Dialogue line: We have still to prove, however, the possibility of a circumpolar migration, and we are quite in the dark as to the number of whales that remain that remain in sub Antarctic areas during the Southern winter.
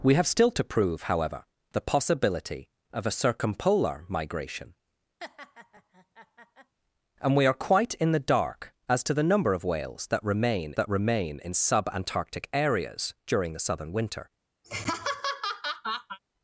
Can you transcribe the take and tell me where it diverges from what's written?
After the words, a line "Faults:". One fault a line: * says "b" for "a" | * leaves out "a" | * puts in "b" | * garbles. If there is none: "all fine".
We have still to prove, however, the possibility of a circumpolar migration, and we are quite in the dark as to the number of whales that remain that remain in sub Antarctic areas during the Southern winter.
Faults:
all fine